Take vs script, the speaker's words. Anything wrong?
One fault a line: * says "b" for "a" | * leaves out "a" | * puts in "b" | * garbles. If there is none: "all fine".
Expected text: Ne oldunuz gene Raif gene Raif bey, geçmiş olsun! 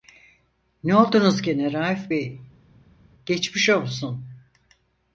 * leaves out "gene Raif"